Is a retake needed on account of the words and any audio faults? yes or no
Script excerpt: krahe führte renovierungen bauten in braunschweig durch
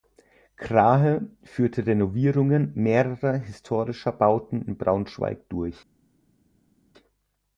yes